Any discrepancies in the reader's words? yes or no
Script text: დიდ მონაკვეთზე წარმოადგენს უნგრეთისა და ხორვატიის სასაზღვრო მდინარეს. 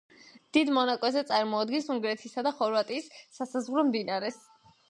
no